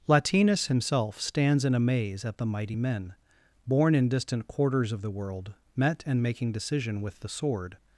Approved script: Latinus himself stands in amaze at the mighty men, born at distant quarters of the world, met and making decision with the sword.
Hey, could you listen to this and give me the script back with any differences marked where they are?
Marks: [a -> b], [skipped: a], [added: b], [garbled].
Latinus himself stands in amaze at the mighty men, born [at -> in] distant quarters of the world, met and making decision with the sword.